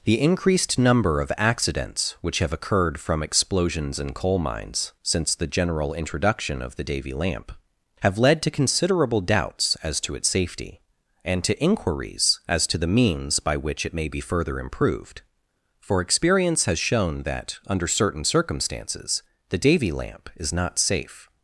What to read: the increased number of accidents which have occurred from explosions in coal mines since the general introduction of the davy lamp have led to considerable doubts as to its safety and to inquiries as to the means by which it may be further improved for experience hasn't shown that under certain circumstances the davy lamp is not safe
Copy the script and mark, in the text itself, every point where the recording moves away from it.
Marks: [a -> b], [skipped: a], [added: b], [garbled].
the increased number of accidents which have occurred from explosions in coal mines since the general introduction of the davy lamp have led to considerable doubts as to its safety and to inquiries as to the means by which it may be further improved for experience [hasn't -> has] shown that under certain circumstances the davy lamp is not safe